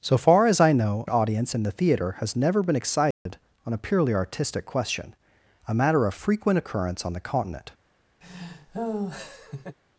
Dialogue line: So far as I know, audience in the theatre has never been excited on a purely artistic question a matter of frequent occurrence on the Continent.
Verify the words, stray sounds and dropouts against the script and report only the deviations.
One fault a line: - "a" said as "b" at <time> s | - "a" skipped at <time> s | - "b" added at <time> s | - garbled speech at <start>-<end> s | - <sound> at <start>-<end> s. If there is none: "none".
- dropout at 3.1-3.3 s
- laugh at 8.2-9.8 s